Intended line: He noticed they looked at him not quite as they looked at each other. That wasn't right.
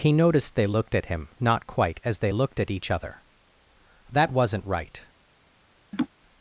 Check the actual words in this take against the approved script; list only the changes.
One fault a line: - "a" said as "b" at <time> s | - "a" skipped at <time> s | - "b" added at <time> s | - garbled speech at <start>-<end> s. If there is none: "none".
none